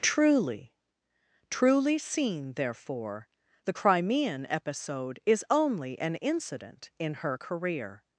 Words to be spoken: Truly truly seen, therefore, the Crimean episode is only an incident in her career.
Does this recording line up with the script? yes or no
yes